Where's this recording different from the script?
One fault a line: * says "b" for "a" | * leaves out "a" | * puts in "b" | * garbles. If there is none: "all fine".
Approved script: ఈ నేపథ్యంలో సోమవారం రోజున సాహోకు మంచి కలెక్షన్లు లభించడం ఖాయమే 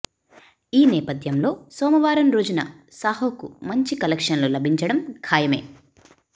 all fine